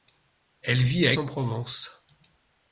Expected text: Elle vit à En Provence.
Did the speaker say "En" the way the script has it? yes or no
yes